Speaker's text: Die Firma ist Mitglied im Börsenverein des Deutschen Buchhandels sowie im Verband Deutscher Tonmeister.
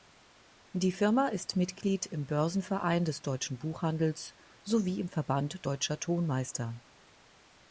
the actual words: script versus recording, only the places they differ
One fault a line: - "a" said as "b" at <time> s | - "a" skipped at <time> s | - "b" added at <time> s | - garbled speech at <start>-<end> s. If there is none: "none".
none